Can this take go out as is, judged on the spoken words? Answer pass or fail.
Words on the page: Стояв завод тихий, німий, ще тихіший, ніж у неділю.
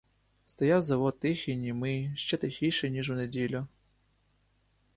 pass